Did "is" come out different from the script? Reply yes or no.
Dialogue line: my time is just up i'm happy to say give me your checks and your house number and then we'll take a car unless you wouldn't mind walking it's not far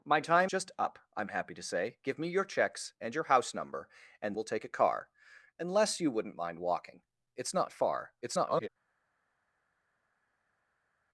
yes